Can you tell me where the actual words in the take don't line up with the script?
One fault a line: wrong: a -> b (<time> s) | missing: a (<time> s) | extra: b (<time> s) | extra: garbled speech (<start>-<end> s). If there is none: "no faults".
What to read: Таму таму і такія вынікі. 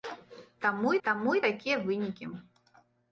no faults